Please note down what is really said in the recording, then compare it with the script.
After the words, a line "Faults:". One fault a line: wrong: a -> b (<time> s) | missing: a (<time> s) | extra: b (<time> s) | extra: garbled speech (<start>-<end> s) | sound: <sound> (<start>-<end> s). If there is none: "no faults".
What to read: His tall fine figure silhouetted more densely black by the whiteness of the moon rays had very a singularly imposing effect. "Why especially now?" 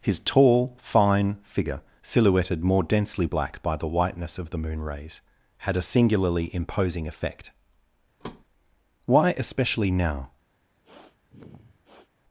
His tall fine figure silhouetted more densely black by the whiteness of the moon rays had a singularly imposing effect. "Why especially now?"
Faults:
missing: very (5.7 s)
sound: thud (8.2-8.4 s)
sound: sniff (10.8-12.1 s)